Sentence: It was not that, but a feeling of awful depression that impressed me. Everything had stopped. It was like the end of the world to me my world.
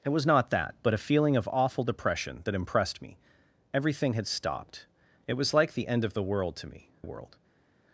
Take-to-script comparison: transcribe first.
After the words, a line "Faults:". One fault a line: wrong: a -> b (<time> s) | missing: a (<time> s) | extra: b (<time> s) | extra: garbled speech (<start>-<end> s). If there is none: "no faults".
It was not that, but a feeling of awful depression that impressed me. Everything had stopped. It was like the end of the world to me world.
Faults:
missing: my (6.9 s)